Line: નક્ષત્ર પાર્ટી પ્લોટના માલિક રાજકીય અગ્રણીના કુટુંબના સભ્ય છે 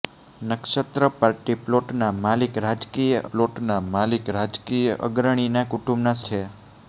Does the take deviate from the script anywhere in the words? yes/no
yes